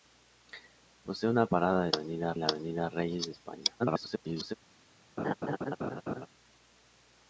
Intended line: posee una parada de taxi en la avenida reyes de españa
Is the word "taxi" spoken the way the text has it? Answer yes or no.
no